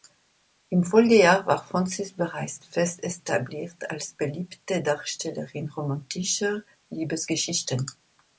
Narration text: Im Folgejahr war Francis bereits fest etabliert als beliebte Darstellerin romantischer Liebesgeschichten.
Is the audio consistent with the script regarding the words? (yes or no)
yes